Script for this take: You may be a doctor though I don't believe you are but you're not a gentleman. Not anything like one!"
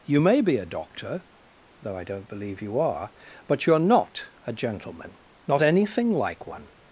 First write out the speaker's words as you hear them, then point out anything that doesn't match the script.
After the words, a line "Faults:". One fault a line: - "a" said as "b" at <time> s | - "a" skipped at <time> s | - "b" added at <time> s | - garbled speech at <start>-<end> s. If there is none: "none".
You may be a doctor though I don't believe you are but you're not a gentleman. Not anything like one!"
Faults:
none